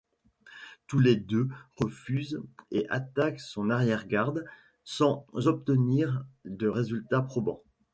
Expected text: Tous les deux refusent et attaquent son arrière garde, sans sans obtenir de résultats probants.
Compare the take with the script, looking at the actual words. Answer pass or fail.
fail